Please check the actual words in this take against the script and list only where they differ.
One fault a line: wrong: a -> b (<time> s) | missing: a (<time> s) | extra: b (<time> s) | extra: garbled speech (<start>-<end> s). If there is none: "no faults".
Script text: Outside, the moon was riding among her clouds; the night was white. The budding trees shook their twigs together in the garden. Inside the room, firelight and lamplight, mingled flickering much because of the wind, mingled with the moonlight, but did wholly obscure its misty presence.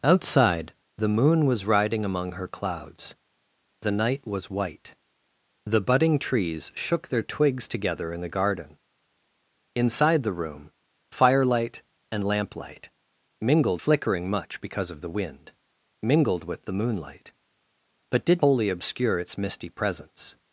no faults